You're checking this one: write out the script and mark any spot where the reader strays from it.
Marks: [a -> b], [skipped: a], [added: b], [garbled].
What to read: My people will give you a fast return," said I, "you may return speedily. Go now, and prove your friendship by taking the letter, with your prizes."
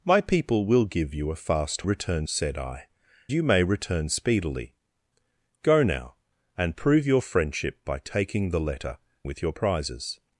My people will give you a fast return," said I, "you may return speedily. Go now, and prove your friendship by taking the letter, with your prizes."